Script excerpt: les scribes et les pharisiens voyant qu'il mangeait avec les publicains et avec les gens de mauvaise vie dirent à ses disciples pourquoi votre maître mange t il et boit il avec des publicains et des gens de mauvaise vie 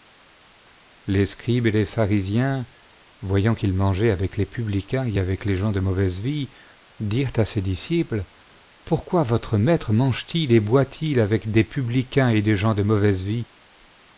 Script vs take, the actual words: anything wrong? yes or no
no